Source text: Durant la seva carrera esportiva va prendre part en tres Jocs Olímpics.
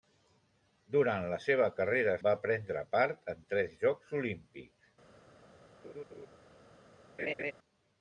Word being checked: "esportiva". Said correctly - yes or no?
no